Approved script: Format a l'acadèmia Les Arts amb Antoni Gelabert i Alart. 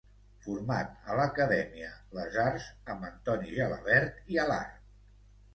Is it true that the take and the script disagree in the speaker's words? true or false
false